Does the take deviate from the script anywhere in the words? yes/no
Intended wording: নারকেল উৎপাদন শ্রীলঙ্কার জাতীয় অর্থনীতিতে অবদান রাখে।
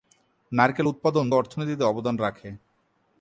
yes